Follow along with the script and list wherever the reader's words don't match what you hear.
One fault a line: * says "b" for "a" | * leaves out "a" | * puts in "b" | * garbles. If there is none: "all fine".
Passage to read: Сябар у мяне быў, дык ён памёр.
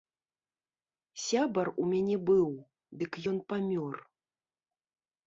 all fine